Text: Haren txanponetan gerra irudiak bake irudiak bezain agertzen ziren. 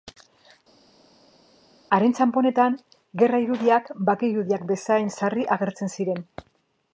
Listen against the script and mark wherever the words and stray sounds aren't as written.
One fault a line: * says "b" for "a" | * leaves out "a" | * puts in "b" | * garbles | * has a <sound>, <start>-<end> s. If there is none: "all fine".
* puts in "sarri"